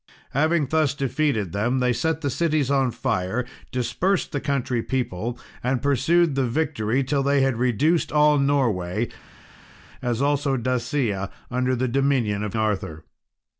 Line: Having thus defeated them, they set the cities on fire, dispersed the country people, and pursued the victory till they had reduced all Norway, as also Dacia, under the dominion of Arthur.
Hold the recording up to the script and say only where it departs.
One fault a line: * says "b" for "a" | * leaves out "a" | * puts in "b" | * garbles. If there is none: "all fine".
all fine